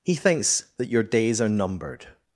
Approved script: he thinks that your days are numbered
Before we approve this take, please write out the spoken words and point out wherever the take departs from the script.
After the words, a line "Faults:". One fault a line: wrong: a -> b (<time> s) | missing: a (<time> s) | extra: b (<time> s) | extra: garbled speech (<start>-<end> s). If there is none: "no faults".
he thinks that your days are numbered
Faults:
no faults